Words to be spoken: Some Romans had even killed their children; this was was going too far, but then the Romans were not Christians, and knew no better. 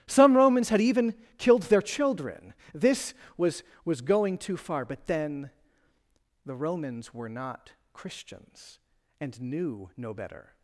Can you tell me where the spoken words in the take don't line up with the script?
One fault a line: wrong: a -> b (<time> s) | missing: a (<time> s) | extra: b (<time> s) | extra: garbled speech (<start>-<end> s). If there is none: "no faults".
no faults